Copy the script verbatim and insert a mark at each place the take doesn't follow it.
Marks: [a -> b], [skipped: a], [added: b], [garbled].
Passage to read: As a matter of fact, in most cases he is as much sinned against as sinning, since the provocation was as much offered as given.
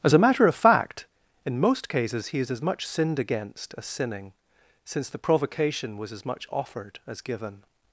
As a matter of fact, in most cases he is as much sinned against as sinning, since the provocation was as much offered as given.